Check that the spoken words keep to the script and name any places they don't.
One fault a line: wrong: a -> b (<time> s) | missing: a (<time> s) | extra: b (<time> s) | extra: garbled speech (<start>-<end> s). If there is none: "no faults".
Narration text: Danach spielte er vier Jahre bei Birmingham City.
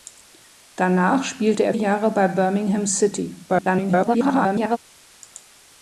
missing: vier (1.7 s)
extra: garbled speech (3.5-4.8 s)